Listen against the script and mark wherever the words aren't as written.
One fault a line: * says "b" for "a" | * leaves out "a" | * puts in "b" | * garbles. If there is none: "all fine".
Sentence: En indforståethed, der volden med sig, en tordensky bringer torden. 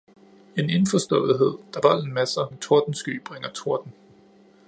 all fine